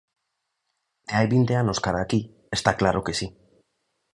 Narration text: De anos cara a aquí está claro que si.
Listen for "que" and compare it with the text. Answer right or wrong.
right